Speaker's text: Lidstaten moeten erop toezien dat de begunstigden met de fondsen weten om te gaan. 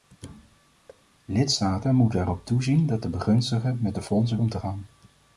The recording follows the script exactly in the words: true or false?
false